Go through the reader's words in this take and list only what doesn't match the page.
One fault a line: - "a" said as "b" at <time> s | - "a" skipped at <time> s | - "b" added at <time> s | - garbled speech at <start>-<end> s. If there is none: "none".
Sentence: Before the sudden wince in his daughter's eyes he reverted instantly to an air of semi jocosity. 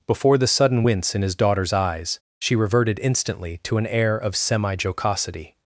- "he" said as "she" at 2.4 s